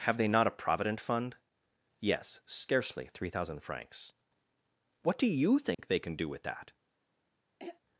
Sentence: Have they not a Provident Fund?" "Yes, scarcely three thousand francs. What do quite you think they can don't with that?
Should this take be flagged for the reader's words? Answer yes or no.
yes